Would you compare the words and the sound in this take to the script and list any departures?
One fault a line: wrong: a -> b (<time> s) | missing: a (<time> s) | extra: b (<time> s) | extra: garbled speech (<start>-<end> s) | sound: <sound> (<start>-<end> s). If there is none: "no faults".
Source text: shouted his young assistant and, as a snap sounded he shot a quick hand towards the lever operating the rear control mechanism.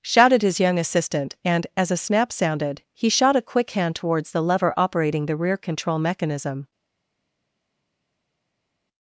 no faults